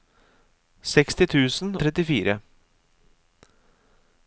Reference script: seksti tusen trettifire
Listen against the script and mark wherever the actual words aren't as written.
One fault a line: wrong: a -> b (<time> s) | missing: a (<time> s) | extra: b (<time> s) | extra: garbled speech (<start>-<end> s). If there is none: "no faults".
no faults